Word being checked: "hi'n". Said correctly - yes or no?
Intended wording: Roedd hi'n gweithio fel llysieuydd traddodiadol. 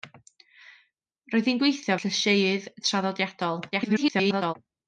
yes